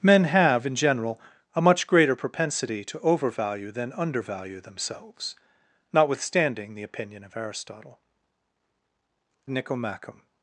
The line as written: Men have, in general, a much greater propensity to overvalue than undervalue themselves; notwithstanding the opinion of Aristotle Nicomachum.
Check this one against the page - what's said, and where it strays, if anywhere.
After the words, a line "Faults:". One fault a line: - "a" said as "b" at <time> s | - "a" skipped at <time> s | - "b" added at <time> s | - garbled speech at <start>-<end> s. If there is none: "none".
Men have, in general, a much greater propensity to overvalue than undervalue themselves; notwithstanding the opinion of Aristotle Nicomachum.
Faults:
none